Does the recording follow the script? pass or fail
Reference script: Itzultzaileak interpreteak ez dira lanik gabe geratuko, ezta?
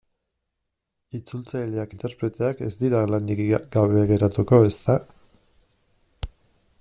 pass